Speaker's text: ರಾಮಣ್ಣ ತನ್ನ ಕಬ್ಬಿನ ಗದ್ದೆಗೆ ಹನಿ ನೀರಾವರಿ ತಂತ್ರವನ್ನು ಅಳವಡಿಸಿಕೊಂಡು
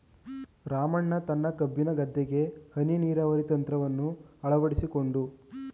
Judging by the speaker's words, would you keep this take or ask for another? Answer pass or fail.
pass